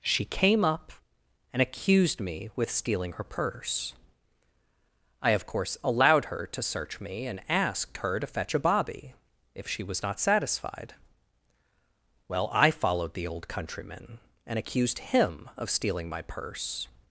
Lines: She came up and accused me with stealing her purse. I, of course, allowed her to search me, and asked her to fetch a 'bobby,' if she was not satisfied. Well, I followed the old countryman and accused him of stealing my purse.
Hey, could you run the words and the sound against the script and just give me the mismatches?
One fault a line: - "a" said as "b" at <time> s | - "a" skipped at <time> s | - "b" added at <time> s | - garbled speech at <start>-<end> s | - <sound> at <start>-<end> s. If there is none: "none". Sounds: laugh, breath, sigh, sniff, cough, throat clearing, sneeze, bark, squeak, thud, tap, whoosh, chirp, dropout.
none